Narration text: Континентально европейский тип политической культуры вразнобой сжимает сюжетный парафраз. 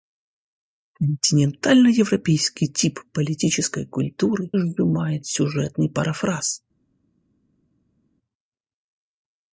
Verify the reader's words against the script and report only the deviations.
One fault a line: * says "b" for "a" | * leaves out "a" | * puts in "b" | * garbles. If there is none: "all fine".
* leaves out "вразнобой"